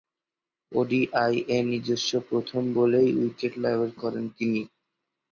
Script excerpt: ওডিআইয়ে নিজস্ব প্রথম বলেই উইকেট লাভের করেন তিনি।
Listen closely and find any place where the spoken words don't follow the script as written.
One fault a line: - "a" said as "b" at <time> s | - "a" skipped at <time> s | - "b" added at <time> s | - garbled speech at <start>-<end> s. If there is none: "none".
none